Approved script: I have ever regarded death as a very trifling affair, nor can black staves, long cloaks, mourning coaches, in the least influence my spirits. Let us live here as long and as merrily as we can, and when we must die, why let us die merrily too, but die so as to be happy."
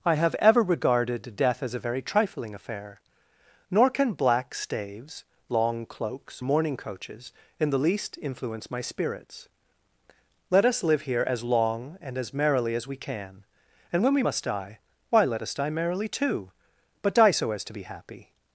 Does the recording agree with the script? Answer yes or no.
yes